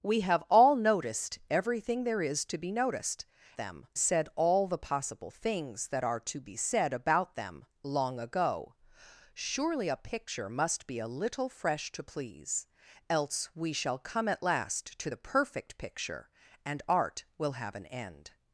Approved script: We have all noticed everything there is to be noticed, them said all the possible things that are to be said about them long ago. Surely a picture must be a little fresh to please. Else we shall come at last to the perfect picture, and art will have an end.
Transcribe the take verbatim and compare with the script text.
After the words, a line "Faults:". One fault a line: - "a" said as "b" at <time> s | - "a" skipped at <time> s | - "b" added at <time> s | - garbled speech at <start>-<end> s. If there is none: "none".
We have all noticed everything there is to be noticed, them said all the possible things that are to be said about them long ago. Surely a picture must be a little fresh to please. Else we shall come at last to the perfect picture, and art will have an end.
Faults:
none